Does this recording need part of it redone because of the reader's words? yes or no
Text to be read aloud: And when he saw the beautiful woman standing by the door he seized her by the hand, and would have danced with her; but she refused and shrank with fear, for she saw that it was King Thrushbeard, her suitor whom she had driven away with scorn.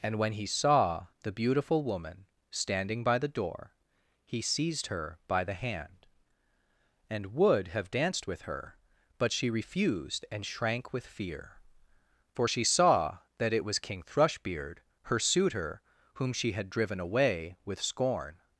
no